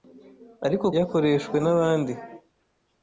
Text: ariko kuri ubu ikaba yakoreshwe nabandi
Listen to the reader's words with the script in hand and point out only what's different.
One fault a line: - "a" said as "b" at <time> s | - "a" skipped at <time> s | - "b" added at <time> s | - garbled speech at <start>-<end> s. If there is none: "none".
- "kuri ubu ikaba" skipped at 0.8 s